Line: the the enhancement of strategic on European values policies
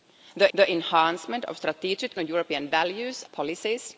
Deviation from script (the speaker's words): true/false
false